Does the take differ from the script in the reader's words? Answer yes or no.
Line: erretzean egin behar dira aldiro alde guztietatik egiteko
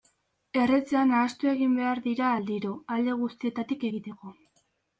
yes